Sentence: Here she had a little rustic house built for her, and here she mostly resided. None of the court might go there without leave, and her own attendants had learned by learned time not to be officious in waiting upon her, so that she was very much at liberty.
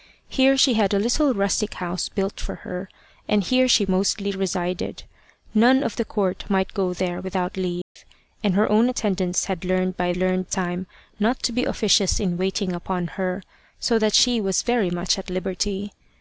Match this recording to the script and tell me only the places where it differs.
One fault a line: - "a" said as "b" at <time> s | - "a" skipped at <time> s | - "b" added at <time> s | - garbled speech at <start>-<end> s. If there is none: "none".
none